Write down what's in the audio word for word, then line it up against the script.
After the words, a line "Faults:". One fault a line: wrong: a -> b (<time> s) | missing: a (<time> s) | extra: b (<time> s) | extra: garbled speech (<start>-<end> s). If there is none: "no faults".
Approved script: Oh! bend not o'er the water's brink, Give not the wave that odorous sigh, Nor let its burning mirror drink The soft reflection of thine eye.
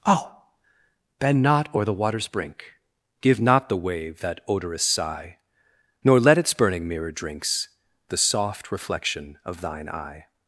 Oh! bend not o'er the water's brink, Give not the wave that odorous sigh, Nor let its burning mirror drinks The soft reflection of thine eye.
Faults:
wrong: drink -> drinks (7.1 s)